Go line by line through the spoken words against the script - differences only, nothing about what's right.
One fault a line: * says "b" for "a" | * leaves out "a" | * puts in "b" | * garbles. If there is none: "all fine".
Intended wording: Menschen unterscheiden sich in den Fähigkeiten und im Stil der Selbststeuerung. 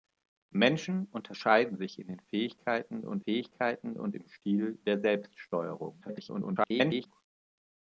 * puts in "Fähigkeiten und"
* garbles